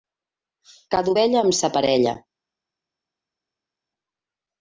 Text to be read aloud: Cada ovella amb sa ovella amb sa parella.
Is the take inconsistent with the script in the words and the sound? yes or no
yes